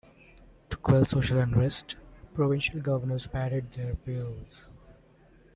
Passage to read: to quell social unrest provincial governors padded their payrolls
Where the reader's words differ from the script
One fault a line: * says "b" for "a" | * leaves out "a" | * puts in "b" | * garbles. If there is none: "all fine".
all fine